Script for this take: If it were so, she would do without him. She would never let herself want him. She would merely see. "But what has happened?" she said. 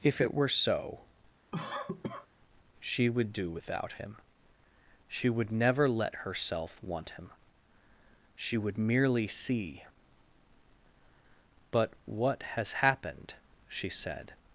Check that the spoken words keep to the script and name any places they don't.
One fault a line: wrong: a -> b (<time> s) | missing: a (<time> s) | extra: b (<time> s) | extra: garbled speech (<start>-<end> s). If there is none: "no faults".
no faults